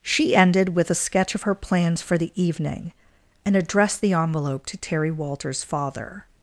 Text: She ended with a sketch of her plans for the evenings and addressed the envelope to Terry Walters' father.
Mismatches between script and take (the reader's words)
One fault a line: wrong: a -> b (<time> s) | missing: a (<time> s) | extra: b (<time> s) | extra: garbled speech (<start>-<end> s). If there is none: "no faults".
wrong: evenings -> evening (2.4 s)